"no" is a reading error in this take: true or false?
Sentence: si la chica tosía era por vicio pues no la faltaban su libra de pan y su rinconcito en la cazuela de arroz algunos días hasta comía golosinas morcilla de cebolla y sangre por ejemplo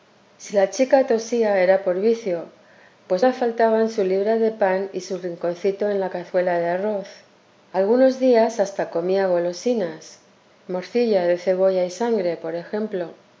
true